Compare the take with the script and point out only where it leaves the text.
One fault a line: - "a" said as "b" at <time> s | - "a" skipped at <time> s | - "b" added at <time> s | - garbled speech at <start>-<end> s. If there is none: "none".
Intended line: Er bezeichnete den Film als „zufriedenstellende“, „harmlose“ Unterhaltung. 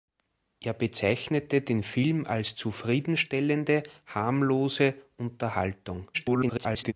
- garbled speech at 6.1-6.9 s